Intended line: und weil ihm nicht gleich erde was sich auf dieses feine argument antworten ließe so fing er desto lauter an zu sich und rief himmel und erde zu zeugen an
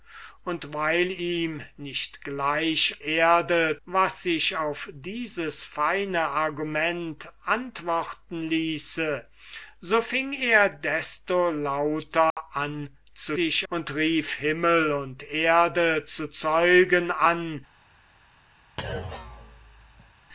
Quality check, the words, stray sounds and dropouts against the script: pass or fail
fail